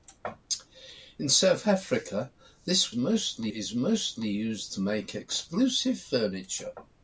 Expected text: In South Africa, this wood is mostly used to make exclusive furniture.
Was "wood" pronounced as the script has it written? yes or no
no